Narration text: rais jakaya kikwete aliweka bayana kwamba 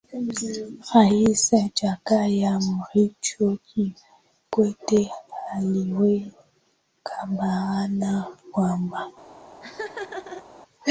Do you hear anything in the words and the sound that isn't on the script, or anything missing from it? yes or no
yes